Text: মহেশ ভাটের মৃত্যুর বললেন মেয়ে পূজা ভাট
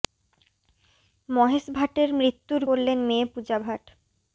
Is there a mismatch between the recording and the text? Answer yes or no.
no